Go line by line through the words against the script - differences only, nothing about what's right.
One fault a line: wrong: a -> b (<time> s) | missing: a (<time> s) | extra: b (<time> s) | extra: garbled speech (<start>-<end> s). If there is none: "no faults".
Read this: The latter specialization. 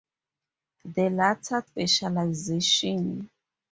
no faults